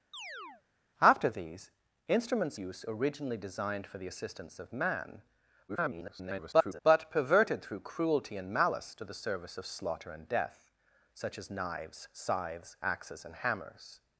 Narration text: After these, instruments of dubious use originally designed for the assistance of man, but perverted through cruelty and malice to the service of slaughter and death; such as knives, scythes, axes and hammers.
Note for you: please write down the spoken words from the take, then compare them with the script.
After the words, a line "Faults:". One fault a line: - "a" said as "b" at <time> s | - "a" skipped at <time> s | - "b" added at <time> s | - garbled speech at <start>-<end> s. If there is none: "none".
After these, instruments use originally designed for the assistance of man, [garbled] but perverted through cruelty and malice to the service of slaughter and death; such as knives, scythes, axes and hammers.
Faults:
- "of dubious" skipped at 2.6 s
- garbled speech at 5.7-6.8 s